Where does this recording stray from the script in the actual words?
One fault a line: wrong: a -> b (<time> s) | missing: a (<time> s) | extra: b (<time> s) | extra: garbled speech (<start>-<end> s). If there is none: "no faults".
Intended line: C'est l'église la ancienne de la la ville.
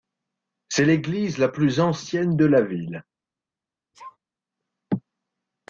extra: plus (1.5 s)
missing: la (2.6 s)